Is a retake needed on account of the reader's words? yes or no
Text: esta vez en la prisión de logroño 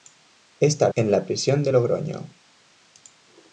yes